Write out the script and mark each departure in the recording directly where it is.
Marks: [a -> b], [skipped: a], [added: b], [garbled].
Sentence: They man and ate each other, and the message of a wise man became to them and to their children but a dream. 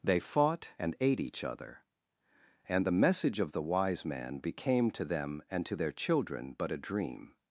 They [man -> fought] and ate each other, and the message of [a -> the] wise man became to them and to their children but a dream.